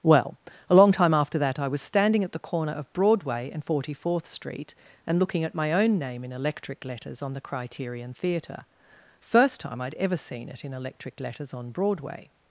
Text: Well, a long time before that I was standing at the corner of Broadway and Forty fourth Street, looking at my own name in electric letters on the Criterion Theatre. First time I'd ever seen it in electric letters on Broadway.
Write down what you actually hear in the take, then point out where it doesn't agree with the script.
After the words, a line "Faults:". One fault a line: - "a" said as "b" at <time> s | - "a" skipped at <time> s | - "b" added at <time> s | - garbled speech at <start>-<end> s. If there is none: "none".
Well, a long time after that I was standing at the corner of Broadway and Forty fourth Street, and looking at my own name in electric letters on the Criterion Theatre. First time I'd ever seen it in electric letters on Broadway.
Faults:
- "before" said as "after" at 1.1 s
- "and" added at 5.0 s